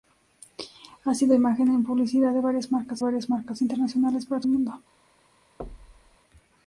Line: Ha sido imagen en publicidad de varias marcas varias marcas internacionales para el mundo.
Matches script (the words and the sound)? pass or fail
fail